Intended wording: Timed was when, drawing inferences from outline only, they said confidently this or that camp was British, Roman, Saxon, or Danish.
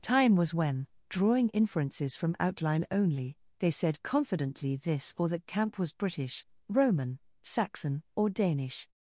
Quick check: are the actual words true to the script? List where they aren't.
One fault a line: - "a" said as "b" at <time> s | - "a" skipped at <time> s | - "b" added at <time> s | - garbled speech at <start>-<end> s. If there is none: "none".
- "Timed" said as "Time" at 0.0 s